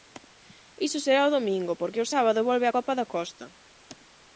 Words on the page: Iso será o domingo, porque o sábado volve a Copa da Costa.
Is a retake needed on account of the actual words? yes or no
no